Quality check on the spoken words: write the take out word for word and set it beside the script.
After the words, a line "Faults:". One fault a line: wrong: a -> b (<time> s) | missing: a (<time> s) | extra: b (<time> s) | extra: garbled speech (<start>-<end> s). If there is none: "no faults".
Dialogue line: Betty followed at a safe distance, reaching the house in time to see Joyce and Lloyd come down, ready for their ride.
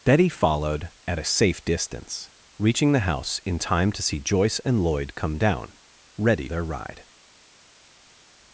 Betty followed at a safe distance, reaching the house in time to see Joyce and Lloyd come down, ready their ride.
Faults:
missing: for (6.5 s)